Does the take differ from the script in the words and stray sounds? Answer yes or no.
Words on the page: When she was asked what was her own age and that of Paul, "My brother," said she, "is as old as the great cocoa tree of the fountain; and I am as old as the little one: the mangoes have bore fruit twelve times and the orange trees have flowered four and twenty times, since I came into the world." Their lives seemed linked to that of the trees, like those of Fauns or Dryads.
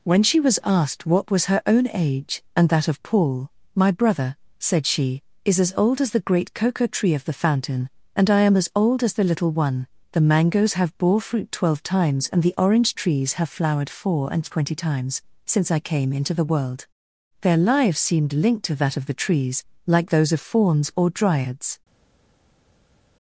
no